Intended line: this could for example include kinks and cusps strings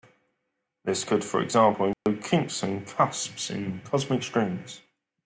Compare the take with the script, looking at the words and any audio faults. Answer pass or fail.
fail